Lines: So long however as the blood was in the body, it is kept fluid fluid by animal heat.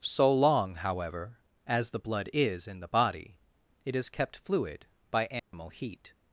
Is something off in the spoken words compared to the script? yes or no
yes